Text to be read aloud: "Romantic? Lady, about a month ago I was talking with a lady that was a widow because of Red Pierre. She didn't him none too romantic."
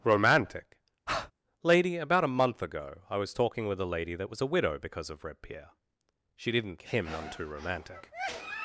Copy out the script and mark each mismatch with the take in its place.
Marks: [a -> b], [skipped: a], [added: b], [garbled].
"Romantic? Lady, about a month ago I was talking with a lady that was a widow because of Red Pierre. She didn't him none too romantic."